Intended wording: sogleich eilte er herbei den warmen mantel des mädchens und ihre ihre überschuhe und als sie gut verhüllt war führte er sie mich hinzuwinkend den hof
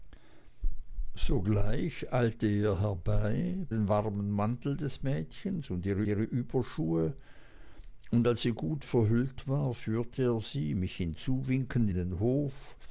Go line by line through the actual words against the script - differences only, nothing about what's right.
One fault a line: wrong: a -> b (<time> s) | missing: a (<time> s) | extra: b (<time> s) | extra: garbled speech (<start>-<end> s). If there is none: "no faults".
no faults